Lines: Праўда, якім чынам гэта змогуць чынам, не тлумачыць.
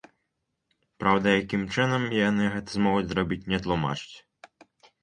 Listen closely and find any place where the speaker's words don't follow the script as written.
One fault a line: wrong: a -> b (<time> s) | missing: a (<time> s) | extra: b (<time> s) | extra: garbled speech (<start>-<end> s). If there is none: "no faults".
extra: яны (2.3 s)
wrong: чынам -> зрабіць (3.1 s)